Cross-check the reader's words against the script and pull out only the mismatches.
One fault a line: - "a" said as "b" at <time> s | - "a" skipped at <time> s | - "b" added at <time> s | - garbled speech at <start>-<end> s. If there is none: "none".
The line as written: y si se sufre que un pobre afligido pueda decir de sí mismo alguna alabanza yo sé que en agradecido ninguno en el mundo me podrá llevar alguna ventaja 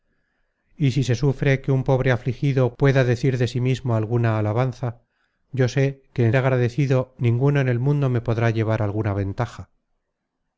none